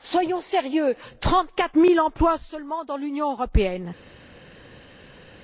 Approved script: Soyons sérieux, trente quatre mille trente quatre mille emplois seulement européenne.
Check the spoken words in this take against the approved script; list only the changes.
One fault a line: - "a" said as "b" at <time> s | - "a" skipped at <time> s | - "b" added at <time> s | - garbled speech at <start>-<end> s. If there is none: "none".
- "trente quatre mille emplois seulement" said as "emplois seulement dans l'Union" at 2.0 s